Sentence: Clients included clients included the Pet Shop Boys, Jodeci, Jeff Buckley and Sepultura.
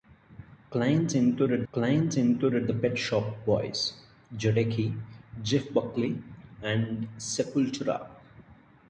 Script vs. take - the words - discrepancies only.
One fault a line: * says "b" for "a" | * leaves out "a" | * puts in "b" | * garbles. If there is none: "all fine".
all fine